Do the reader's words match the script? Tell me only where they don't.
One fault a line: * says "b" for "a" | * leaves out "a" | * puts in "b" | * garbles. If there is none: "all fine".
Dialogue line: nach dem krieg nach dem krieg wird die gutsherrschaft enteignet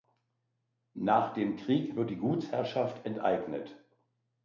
* leaves out "nach dem krieg"